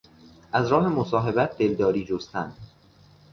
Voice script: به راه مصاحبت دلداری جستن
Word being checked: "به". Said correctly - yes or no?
no